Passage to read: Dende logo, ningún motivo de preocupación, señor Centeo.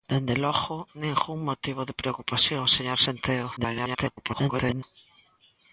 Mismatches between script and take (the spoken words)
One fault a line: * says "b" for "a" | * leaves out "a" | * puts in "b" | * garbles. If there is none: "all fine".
* garbles